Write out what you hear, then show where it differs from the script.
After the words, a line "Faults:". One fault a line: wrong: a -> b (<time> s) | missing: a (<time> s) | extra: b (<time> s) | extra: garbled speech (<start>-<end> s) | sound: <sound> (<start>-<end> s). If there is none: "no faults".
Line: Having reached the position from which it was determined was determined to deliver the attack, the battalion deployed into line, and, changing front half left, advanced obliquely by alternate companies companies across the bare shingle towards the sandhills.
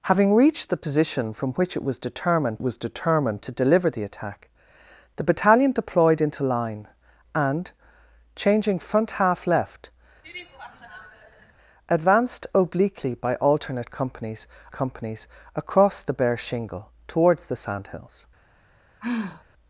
Having reached the position from which it was determined was determined to deliver the attack, the battalion deployed into line, and, changing front half left, advanced obliquely by alternate companies companies across the bare shingle towards the sandhills.
Faults:
sound: laugh (10.2-11.5 s)
sound: sigh (19.0-19.4 s)